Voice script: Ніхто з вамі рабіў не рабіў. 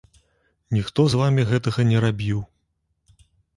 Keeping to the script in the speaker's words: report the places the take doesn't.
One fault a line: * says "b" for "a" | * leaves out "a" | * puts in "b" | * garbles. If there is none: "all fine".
* says "гэтага" for "рабіў"